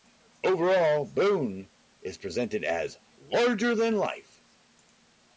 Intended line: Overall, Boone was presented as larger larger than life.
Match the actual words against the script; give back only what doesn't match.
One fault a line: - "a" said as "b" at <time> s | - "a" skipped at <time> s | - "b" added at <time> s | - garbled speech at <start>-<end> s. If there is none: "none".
- "was" said as "is" at 2.0 s
- "larger" skipped at 3.8 s